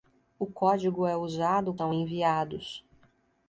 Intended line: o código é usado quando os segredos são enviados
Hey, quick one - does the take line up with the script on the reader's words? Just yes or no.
no